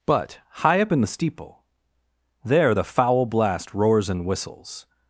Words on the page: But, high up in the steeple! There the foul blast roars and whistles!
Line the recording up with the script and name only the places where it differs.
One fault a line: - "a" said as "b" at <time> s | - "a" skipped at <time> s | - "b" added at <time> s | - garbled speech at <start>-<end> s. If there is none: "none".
none